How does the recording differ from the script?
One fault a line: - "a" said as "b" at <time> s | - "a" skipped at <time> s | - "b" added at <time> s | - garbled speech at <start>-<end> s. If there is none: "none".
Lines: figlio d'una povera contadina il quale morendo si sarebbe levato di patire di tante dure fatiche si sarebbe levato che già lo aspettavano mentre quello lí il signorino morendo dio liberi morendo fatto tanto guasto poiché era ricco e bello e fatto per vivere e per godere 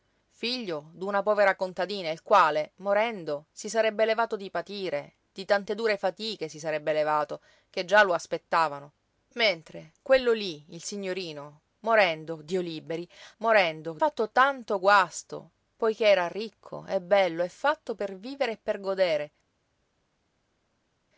none